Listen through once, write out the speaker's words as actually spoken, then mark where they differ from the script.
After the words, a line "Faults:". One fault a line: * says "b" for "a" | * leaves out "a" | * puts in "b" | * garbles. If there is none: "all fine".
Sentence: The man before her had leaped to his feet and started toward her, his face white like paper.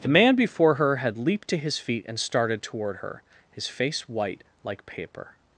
The man before her had leaped to his feet and started toward her, his face white like paper.
Faults:
all fine